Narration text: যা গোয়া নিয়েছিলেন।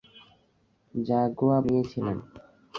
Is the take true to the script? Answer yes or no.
yes